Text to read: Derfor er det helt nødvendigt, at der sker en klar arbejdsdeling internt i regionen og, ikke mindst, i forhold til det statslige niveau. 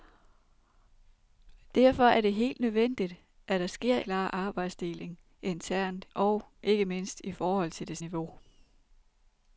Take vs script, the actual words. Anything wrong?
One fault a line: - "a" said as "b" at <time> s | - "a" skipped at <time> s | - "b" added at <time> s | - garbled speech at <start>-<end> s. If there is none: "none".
- "en" skipped at 4.0 s
- "i regionen" skipped at 6.1 s
- "statslige" skipped at 8.0 s